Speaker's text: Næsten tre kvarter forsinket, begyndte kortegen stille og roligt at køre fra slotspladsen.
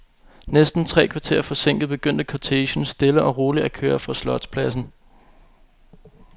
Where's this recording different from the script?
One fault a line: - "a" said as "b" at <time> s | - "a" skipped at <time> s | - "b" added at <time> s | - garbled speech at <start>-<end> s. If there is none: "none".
none